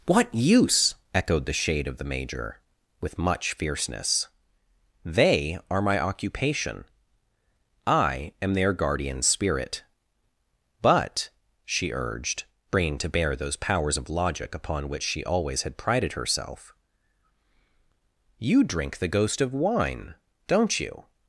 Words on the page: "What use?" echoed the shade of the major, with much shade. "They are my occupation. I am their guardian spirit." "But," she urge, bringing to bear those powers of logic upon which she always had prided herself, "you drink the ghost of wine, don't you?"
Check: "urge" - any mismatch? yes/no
yes